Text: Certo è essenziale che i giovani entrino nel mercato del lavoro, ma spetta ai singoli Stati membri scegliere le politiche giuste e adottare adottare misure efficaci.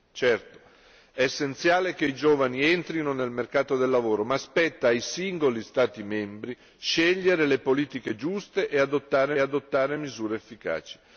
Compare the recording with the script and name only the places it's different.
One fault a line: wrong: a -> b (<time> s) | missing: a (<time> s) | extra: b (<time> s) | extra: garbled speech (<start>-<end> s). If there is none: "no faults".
no faults